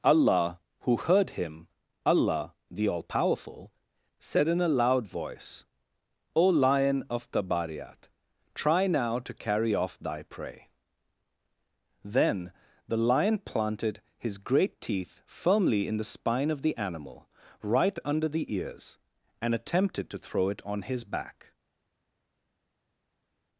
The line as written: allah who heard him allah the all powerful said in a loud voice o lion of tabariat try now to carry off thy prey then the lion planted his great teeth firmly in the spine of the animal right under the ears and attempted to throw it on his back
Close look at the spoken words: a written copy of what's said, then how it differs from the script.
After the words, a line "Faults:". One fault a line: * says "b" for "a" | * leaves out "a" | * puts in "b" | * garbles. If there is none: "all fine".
allah who heard him allah the all powerful said in a loud voice o lion of tabariat try now to carry off thy prey then the lion planted his great teeth firmly in the spine of the animal right under the ears and attempted to throw it on his back
Faults:
all fine